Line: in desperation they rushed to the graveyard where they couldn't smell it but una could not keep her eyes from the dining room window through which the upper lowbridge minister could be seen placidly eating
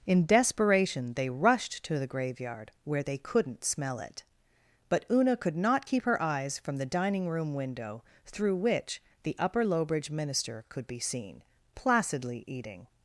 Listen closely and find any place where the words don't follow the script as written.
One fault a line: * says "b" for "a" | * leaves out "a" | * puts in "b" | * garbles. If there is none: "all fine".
all fine